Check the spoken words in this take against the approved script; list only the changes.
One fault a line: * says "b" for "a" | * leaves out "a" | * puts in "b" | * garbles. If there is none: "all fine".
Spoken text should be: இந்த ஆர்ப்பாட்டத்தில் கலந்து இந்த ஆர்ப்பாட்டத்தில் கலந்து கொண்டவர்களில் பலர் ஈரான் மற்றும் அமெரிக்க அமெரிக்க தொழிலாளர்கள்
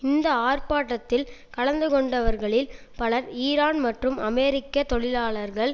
* leaves out "இந்த ஆர்ப்பாட்டத்தில் கலந்து"
* leaves out "அமெரிக்க"